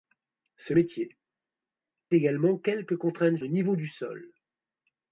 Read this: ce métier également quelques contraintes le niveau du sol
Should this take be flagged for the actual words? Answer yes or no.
no